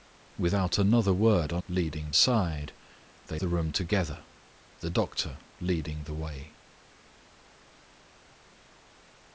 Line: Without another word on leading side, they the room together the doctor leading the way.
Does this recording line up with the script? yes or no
yes